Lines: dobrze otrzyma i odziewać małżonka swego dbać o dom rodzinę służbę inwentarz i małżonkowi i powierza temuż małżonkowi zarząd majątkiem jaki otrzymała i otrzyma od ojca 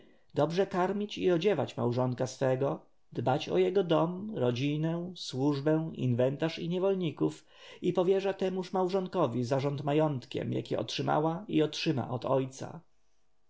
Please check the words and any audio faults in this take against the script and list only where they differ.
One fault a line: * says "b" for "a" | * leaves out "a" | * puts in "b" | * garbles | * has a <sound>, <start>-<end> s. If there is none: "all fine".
* says "karmić" for "otrzyma"
* puts in "jego"
* says "niewolników" for "małżonkowi"